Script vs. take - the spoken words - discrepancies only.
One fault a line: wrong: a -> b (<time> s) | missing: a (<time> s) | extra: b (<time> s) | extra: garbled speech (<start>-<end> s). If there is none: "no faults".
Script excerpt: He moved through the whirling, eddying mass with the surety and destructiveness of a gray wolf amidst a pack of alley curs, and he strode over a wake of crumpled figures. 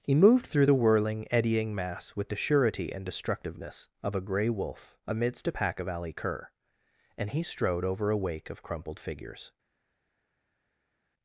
wrong: curs -> cur (6.1 s)